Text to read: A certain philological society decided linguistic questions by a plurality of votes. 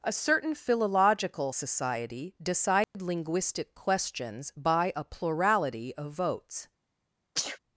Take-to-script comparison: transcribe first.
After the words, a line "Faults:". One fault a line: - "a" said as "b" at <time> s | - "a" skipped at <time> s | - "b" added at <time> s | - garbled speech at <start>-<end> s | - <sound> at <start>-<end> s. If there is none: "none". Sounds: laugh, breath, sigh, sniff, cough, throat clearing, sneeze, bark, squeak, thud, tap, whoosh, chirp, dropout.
A certain philological society decided linguistic questions by a plurality of votes.
Faults:
- dropout at 2.8-2.9 s
- sneeze at 7.4-7.6 s